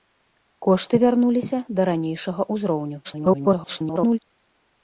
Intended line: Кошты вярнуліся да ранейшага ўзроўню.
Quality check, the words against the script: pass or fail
fail